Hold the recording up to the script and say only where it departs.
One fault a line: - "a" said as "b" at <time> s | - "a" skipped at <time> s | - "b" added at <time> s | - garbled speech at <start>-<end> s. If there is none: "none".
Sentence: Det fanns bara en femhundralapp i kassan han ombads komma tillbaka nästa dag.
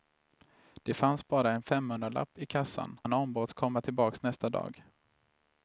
none